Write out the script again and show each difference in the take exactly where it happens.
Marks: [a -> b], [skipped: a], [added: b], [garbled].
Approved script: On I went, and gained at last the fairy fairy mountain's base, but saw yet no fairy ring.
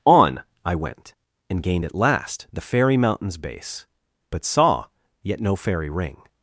On I went, and gained at last the fairy [skipped: fairy] mountain's base, but saw yet no fairy ring.